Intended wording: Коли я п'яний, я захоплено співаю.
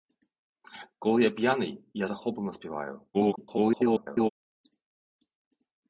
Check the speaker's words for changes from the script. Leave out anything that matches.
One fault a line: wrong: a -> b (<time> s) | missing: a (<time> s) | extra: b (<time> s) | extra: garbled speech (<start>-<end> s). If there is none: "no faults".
extra: garbled speech (3.1-4.3 s)